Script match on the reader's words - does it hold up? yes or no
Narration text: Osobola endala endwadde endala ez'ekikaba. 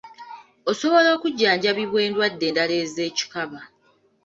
no